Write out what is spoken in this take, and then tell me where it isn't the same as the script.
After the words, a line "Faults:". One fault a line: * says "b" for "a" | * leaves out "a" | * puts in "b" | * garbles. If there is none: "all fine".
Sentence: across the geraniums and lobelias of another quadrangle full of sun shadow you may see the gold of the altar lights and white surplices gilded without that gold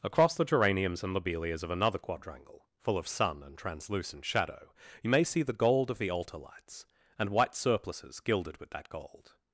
across the geraniums and lobelias of another quadrangle full of sun and translucent shadow you may see the gold of the altar lights and white surplices gilded with that gold
Faults:
* puts in "and translucent"
* says "with" for "without"